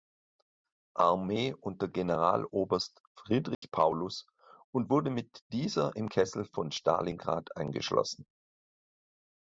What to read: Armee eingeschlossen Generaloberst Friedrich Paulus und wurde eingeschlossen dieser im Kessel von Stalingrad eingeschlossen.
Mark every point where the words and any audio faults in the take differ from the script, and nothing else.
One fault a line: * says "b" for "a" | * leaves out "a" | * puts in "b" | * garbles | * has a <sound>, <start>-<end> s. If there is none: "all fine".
* says "unter" for "eingeschlossen"
* has a dropout, 3.5-3.6 s
* says "mit" for "eingeschlossen"